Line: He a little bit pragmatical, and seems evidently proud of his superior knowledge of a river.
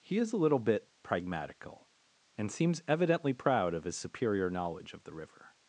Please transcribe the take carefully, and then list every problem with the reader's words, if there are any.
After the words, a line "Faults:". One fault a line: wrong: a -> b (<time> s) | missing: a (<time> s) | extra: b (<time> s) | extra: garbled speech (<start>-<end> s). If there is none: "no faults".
He is a little bit pragmatical, and seems evidently proud of his superior knowledge of the river.
Faults:
extra: is (0.2 s)
wrong: a -> the (5.0 s)